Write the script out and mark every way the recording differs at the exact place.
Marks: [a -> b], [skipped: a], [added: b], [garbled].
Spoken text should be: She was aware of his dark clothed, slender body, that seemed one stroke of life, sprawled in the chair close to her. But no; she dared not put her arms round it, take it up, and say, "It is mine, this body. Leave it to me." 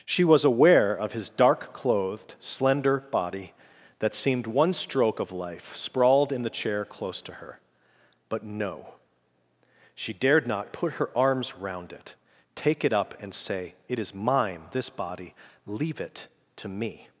She was aware of his dark clothed, slender body, that seemed one stroke of life, sprawled in the chair close to her. But no; she dared not put her arms round it, take it up, and say, "It is mine, this body. Leave it to me."